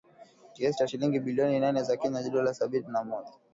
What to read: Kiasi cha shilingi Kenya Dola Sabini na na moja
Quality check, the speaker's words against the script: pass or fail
fail